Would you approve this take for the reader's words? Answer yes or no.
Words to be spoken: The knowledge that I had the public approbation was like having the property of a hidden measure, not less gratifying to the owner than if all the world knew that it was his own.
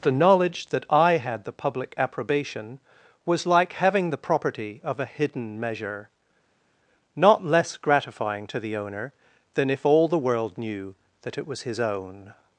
yes